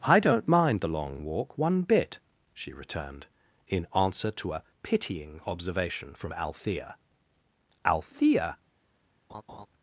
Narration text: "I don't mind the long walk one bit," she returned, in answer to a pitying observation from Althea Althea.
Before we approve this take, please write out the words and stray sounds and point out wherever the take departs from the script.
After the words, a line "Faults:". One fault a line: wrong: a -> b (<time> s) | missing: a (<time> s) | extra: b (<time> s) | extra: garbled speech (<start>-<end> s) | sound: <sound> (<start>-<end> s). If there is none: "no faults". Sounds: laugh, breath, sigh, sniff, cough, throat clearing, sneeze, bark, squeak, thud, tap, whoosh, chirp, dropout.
"I don't mind the long walk one bit," she returned, in answer to a pitying observation from Althea Althea.
Faults:
sound: laugh (9.3-9.7 s)